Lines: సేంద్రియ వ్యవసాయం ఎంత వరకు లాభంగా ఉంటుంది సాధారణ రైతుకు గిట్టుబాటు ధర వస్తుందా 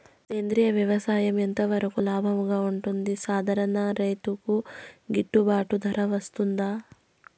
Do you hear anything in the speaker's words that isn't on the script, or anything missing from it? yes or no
no